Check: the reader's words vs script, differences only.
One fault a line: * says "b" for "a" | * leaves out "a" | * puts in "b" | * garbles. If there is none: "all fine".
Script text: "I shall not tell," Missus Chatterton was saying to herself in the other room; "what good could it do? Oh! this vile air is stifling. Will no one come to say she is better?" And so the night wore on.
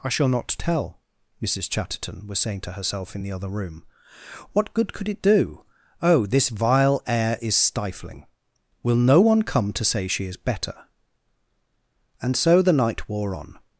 all fine